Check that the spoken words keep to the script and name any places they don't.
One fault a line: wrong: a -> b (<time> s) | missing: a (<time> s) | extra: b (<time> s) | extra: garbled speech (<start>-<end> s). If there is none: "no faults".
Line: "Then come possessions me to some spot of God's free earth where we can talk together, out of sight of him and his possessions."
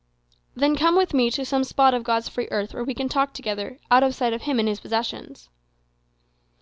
wrong: possessions -> with (1.0 s)